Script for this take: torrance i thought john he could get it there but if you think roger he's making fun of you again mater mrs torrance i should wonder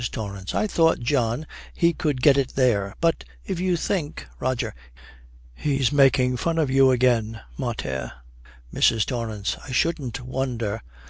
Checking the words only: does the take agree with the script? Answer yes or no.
no